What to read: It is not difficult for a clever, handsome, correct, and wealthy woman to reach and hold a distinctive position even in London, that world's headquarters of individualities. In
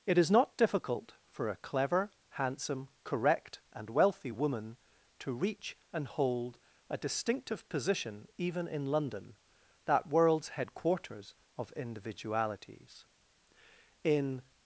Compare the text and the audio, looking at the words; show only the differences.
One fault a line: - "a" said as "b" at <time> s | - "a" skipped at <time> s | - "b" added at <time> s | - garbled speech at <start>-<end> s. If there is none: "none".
none